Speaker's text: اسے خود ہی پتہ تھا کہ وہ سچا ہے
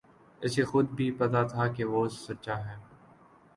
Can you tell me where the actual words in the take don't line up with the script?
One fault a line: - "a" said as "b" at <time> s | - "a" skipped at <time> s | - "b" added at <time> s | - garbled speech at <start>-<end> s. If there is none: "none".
- "ہی" said as "بھی" at 1.0 s